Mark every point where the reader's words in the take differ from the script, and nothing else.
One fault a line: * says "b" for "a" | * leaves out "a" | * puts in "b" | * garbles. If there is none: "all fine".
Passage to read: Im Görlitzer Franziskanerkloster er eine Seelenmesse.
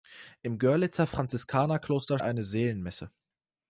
all fine